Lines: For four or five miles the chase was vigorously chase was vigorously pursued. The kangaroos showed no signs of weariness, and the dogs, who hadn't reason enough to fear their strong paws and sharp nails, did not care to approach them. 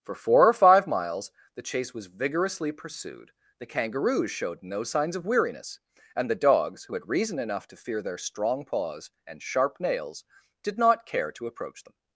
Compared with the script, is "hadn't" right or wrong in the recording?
wrong